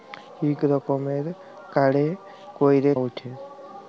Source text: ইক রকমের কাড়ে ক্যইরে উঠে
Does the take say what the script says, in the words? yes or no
yes